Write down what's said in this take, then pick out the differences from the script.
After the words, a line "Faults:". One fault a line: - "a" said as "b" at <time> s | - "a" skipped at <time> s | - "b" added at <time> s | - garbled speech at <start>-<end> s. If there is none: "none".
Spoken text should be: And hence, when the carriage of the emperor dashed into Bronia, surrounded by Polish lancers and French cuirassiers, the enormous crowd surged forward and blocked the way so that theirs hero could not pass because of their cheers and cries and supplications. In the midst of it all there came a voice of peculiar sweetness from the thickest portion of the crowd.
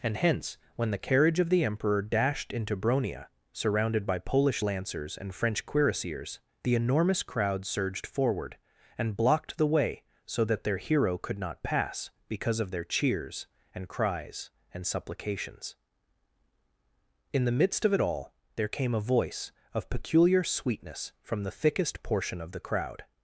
And hence, when the carriage of the emperor dashed into Bronia, surrounded by Polish lancers and French cuirassiers, the enormous crowd surged forward and blocked the way so that their hero could not pass because of their cheers and cries and supplications. In the midst of it all there came a voice of peculiar sweetness from the thickest portion of the crowd.
Faults:
- "theirs" said as "their" at 10.6 s